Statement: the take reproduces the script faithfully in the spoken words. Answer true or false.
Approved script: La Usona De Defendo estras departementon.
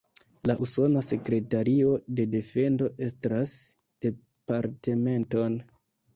false